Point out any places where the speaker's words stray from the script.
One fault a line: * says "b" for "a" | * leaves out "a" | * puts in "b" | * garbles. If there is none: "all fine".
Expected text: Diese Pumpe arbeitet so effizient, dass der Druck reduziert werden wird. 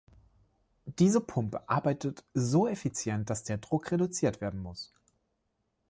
* says "muss" for "wird"